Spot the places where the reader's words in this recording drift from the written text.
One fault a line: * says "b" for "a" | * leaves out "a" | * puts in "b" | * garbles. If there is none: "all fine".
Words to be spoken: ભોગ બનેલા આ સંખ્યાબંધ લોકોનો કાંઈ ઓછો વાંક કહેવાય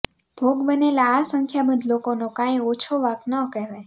* puts in "ન"